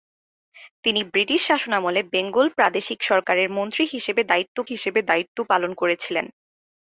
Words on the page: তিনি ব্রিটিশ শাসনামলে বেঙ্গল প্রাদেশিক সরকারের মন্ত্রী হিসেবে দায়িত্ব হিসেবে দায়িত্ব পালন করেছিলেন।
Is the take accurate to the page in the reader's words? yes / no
yes